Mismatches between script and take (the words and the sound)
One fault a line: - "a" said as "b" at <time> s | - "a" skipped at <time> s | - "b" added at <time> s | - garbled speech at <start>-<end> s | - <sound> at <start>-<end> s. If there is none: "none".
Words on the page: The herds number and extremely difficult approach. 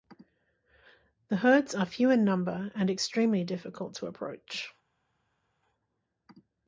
- "are few in" added at 1.8 s
- "to" added at 4.0 s